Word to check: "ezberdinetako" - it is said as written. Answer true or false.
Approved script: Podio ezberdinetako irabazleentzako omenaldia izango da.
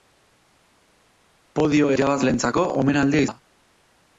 false